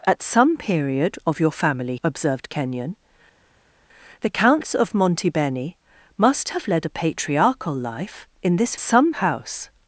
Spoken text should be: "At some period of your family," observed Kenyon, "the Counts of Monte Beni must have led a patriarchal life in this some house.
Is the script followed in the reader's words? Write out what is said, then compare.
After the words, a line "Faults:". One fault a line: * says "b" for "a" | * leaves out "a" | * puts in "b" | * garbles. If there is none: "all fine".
"At some period of your family," observed Kenyon, "the Counts of Monte Beni must have led a patriarchal life in this some house.
Faults:
all fine